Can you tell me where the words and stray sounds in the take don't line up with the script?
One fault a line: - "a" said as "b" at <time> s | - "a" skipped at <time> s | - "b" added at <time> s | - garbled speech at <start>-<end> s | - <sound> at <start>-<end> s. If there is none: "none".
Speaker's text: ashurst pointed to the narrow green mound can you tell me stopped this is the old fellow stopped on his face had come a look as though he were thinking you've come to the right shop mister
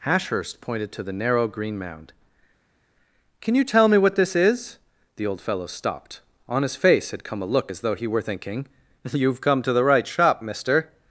- "stopped" said as "what" at 4.0 s